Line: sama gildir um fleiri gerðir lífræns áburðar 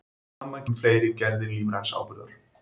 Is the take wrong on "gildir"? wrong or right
wrong